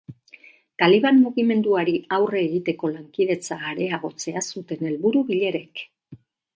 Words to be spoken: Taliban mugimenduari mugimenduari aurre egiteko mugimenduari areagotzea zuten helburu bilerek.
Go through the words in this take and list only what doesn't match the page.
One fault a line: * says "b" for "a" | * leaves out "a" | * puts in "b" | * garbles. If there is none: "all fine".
* leaves out "mugimenduari"
* says "lankidetza" for "mugimenduari"